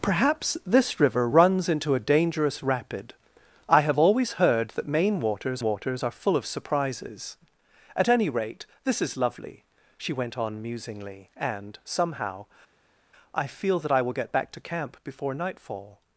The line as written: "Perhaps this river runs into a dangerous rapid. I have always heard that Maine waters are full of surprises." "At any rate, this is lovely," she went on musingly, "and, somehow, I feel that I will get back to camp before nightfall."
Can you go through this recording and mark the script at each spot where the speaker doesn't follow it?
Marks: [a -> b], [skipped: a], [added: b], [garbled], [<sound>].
"Perhaps this river runs into a dangerous rapid. I have always heard that Maine waters [added: waters] are full of surprises." "At any rate, this is lovely," she went on musingly, "and, somehow, I feel that I will get back to camp before nightfall."